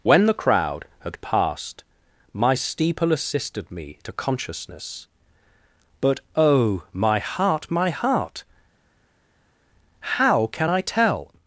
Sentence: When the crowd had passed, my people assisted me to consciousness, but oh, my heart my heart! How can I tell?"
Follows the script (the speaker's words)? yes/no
no